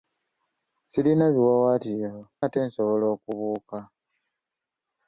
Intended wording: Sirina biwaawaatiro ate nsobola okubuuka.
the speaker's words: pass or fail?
pass